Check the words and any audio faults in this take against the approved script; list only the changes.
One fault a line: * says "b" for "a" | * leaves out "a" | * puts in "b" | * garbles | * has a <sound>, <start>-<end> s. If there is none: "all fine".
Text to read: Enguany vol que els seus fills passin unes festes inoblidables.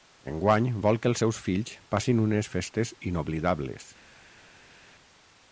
all fine